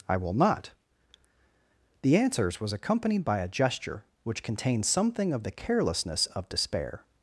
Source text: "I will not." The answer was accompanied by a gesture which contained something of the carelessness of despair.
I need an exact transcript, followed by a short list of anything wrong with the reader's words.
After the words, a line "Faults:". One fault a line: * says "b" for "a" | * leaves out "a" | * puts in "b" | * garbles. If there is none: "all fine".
"I will not." The answers was accompanied by a gesture which contained something of the carelessness of despair.
Faults:
* says "answers" for "answer"